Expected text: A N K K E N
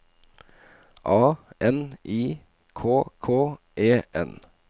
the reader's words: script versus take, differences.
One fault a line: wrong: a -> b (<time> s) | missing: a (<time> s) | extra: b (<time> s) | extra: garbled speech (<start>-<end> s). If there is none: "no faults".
extra: I (2.0 s)